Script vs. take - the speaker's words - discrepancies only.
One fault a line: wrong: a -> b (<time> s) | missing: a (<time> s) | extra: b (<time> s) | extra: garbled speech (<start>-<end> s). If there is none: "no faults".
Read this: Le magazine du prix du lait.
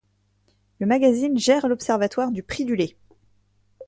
extra: gère l'observatoire (1.4 s)